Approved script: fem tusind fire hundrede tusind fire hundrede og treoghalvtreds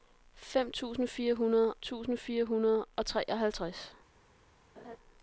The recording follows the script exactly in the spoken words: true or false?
true